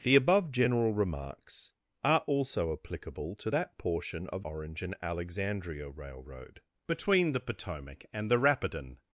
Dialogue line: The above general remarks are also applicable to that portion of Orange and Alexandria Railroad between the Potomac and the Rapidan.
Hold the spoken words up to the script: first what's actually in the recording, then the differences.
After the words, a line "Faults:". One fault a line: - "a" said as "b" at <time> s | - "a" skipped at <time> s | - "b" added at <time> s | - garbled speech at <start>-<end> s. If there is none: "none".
The above general remarks are also applicable to that portion of Orange and Alexandria Railroad between the Potomac and the Rapidan.
Faults:
none